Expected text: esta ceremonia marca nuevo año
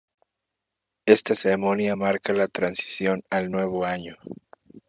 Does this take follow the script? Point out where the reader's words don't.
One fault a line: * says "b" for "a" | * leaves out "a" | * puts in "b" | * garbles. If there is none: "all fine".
* puts in "la transición al"